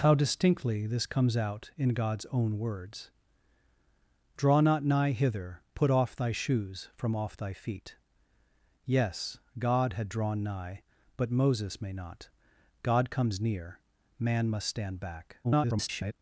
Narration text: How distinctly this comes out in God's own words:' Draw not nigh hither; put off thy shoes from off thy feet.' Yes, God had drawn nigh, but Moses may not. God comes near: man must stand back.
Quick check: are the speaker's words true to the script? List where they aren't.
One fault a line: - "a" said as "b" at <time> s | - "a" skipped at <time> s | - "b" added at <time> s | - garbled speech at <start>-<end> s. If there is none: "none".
- garbled speech at 15.4-16.1 s